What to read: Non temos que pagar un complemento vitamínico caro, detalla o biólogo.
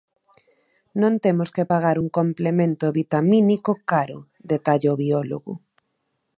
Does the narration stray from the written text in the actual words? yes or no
no